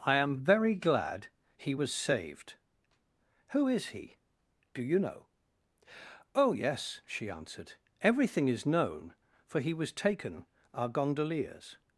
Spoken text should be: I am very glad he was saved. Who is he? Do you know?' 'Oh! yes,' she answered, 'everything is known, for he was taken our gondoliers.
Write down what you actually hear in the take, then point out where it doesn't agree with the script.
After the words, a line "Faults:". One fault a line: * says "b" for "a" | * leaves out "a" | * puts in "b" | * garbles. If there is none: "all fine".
I am very glad he was saved. Who is he? Do you know?' 'Oh! yes,' she answered, 'everything is known, for he was taken our gondoliers.
Faults:
all fine